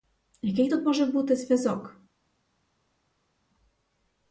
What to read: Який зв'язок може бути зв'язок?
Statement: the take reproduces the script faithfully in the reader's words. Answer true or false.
false